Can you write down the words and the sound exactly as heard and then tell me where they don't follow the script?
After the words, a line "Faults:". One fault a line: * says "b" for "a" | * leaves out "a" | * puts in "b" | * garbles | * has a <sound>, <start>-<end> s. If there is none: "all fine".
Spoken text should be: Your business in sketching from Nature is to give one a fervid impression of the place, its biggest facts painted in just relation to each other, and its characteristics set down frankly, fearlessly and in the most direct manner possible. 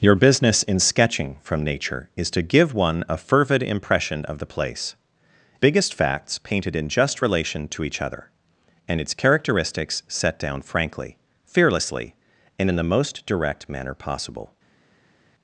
Your business in sketching from Nature is to give one a fervid impression of the place, biggest facts painted in just relation to each other, and its characteristics set down frankly, fearlessly and in the most direct manner possible.
Faults:
* leaves out "its"